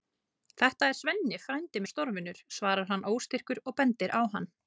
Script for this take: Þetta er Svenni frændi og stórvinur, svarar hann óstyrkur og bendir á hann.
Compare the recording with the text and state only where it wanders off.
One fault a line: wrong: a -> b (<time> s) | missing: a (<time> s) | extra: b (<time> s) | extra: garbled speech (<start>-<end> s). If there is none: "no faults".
no faults